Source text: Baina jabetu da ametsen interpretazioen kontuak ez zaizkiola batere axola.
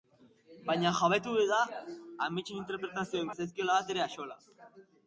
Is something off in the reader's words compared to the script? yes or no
yes